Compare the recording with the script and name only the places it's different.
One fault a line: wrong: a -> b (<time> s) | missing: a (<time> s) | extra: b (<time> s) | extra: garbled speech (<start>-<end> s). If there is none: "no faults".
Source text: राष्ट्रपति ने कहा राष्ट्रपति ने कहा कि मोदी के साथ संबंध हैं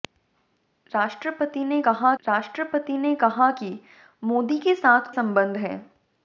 no faults